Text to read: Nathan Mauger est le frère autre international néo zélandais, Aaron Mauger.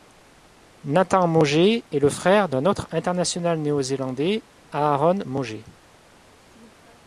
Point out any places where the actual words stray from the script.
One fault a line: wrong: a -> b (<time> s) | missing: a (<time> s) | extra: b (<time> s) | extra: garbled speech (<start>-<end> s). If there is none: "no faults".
extra: d'un (2.5 s)